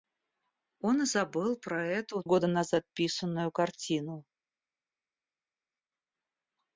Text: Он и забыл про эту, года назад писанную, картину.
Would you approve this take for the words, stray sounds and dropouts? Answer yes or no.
yes